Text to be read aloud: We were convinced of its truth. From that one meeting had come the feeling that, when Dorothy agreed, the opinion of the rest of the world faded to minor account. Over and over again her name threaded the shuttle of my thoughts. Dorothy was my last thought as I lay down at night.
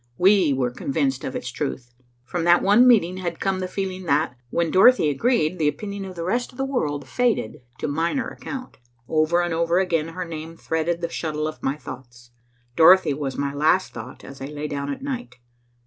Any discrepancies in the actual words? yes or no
no